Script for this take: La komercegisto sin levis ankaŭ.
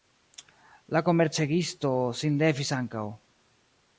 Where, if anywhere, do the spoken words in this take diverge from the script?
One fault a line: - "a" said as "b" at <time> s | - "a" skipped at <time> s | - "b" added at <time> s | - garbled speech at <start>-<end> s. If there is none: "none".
none